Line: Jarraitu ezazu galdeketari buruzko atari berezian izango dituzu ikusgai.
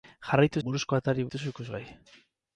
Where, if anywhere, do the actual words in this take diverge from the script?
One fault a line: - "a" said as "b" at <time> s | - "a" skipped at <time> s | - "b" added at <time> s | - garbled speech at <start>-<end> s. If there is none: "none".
- "ezazu galdeketari" skipped at 0.6 s
- "berezian izango" skipped at 1.3 s